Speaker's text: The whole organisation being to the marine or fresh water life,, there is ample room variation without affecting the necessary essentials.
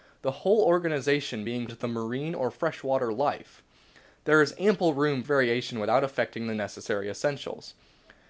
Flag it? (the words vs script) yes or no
no